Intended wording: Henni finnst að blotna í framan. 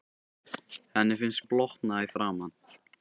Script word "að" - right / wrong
right